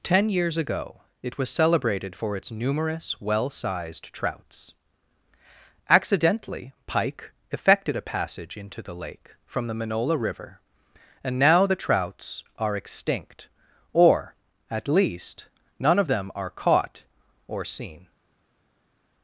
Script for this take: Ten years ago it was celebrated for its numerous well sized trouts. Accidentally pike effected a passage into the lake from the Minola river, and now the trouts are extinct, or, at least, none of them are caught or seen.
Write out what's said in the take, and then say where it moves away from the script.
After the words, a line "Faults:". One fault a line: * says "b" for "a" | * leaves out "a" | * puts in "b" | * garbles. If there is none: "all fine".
Ten years ago it was celebrated for its numerous well sized trouts. Accidentally pike effected a passage into the lake from the Minola river, and now the trouts are extinct, or, at least, none of them are caught or seen.
Faults:
all fine